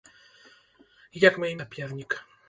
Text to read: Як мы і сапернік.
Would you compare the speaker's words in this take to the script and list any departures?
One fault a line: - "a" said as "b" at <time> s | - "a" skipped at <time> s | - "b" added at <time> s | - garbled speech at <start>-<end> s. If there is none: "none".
none